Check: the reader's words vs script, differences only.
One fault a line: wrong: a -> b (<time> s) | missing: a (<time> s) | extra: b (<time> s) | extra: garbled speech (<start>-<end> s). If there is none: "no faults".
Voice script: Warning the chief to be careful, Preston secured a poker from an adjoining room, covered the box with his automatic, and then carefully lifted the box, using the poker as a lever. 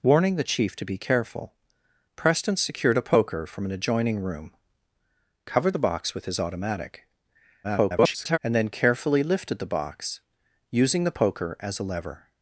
extra: garbled speech (7.6-8.4 s)